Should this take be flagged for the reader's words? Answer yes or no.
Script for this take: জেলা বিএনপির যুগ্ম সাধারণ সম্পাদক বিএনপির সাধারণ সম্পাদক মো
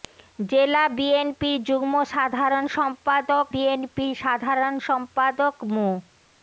no